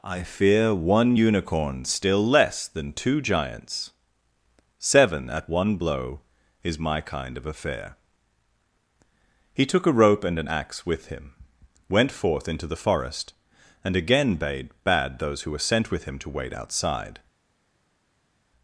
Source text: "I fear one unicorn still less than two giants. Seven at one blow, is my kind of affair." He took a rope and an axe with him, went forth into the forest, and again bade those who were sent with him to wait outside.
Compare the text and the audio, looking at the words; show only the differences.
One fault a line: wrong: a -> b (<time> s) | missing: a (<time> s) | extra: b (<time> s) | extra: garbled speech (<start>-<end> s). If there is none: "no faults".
extra: bade (14.8 s)